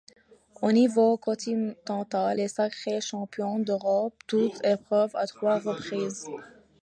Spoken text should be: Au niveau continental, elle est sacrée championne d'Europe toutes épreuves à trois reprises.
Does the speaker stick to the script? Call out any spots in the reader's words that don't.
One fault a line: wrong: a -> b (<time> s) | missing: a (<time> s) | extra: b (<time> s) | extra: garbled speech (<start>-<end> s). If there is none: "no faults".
missing: elle (2.4 s)